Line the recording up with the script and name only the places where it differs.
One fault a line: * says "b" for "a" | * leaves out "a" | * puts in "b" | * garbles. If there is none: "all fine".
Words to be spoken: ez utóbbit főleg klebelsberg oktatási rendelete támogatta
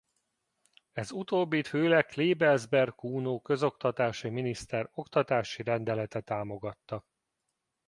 * puts in "kuno közoktatási miniszter"